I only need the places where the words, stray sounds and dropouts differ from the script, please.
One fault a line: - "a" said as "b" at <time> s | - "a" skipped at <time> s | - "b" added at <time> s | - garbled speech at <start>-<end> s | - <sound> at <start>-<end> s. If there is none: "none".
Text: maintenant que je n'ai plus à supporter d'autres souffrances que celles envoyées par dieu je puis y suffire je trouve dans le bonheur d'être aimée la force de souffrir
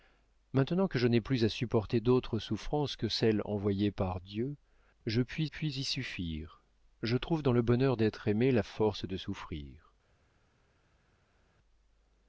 - "puis" added at 5.4 s